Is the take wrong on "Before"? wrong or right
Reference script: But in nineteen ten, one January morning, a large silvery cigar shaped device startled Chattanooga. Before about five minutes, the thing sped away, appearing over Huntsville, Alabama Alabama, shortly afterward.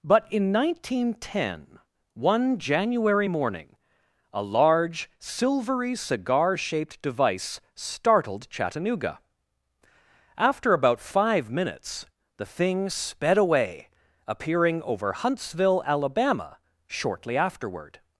wrong